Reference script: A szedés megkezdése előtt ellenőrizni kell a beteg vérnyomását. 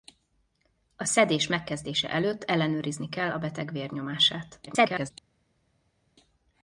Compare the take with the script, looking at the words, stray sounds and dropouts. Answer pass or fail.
fail